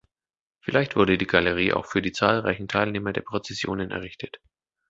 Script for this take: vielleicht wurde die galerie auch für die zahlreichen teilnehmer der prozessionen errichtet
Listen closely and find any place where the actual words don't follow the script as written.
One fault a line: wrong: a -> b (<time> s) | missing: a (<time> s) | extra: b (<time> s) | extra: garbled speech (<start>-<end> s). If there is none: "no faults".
no faults